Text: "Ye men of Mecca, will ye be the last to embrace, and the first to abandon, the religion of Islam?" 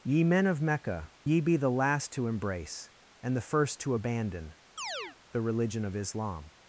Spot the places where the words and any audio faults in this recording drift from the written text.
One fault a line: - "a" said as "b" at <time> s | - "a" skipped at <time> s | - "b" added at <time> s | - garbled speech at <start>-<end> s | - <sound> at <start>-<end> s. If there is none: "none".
- "will" skipped at 1.1 s
- chirp at 4.8-5.2 s